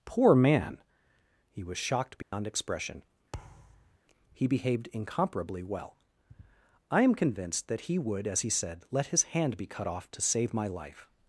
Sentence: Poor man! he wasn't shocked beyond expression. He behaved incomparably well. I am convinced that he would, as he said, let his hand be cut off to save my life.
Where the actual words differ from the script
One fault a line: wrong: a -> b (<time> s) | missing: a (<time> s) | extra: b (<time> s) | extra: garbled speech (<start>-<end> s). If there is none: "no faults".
wrong: wasn't -> was (1.6 s)